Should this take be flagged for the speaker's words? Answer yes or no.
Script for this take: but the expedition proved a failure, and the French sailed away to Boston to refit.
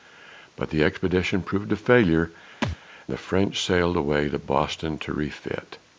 yes